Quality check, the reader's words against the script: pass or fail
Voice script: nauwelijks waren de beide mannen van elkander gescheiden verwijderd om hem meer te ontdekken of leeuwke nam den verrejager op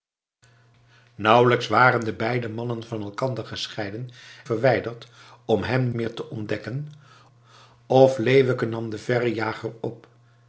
pass